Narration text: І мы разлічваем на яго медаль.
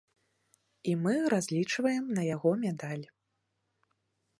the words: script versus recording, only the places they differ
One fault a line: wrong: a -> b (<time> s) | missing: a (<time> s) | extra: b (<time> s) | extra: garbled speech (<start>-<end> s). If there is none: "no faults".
no faults